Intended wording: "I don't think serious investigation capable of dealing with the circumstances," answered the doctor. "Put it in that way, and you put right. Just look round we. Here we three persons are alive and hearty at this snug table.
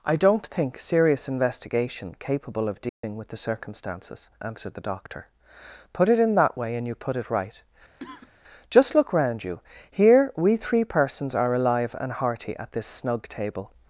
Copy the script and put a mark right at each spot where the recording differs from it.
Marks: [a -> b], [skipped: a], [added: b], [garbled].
"I don't think serious investigation capable of dealing with the circumstances," answered the doctor. "Put it in that way, and you put [added: it] right. Just look round [we. -> you] Here we three persons are alive and hearty at this snug table.